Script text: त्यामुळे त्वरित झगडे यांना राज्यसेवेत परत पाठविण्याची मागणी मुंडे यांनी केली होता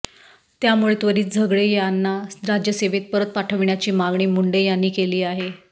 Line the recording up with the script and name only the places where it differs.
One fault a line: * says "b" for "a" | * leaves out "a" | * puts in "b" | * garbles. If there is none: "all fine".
* says "आहे" for "होता"